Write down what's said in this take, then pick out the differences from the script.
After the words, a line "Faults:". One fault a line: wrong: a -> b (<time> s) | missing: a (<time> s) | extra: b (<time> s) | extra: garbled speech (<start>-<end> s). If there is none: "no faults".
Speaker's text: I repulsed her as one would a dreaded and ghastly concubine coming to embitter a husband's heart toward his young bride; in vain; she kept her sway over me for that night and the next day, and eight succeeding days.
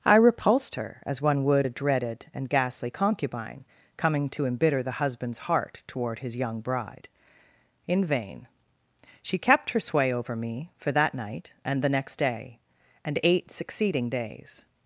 I repulsed her as one would a dreaded and ghastly concubine coming to embitter the husband's heart toward his young bride; in vain; she kept her sway over me for that night and the next day, and eight succeeding days.
Faults:
wrong: a -> the (4.8 s)